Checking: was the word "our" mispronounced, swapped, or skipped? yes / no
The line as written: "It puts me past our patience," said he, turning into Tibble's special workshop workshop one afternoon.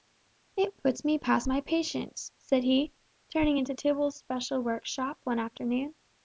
yes